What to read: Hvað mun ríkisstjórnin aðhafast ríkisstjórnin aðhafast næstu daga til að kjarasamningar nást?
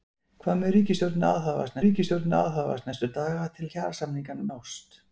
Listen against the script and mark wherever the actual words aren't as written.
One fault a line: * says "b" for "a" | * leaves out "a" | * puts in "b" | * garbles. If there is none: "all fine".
all fine